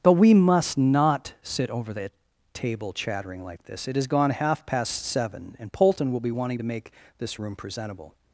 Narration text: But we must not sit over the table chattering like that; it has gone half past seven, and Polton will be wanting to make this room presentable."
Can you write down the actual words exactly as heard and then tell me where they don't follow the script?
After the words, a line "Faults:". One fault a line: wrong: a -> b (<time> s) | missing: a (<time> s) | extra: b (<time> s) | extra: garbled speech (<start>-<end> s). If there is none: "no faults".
But we must not sit over the table chattering like this; it has gone half past seven, and Polton will be wanting to make this room presentable."
Faults:
wrong: that -> this (3.6 s)